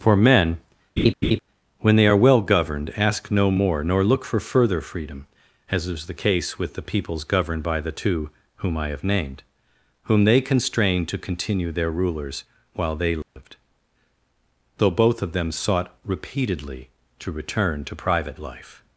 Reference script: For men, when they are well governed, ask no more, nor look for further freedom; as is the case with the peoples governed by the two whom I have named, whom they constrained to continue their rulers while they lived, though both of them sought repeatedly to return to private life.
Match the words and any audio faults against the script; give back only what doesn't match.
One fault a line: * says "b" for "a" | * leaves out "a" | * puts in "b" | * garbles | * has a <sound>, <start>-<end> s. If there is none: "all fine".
* has a laugh, 1.0-1.4 s
* has a dropout, 13.2-13.4 s